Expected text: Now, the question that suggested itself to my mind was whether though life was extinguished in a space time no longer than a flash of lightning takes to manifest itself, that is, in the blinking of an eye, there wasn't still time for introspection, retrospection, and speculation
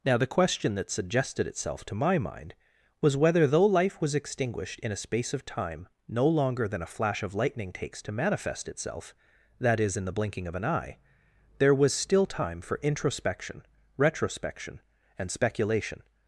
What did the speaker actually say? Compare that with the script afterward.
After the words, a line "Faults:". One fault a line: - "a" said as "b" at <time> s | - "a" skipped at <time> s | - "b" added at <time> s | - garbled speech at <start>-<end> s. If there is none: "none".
Now, the question that suggested itself to my mind was whether though life was extinguished in a space of time no longer than a flash of lightning takes to manifest itself, that is, in the blinking of an eye, there was still time for introspection, retrospection, and speculation
Faults:
- "of" added at 5.3 s
- "wasn't" said as "was" at 11.7 s